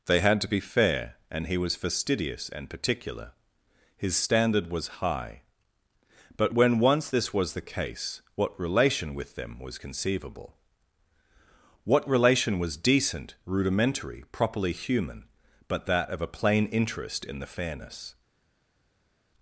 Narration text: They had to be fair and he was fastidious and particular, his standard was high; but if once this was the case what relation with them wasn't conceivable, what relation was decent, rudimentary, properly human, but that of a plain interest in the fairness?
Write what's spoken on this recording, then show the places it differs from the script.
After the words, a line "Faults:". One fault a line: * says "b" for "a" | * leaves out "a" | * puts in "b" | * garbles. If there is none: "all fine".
They had to be fair and he was fastidious and particular, his standard was high; but when once this was the case what relation with them was conceivable, what relation was decent, rudimentary, properly human, but that of a plain interest in the fairness?
Faults:
* says "when" for "if"
* says "was" for "wasn't"